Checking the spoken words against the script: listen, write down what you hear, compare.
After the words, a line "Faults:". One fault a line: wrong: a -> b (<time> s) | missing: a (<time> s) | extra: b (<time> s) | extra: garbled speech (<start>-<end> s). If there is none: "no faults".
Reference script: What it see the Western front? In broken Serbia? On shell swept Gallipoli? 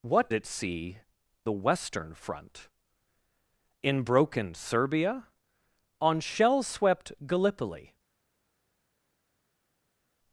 What it see the Western front? In broken Serbia? On shell swept Gallipoli?
Faults:
no faults